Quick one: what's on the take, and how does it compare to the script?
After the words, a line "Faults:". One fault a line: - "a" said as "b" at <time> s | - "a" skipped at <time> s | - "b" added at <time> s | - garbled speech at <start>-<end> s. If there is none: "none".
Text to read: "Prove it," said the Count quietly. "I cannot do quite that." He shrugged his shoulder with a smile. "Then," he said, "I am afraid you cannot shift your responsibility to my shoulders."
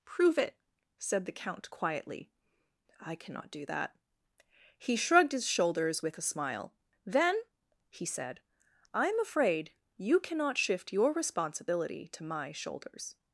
"Prove it," said the Count quietly. "I cannot do that." He shrugged his shoulders with a smile. "Then," he said, "I am afraid you cannot shift your responsibility to my shoulders."
Faults:
- "quite" skipped at 3.7 s
- "shoulder" said as "shoulders" at 5.5 s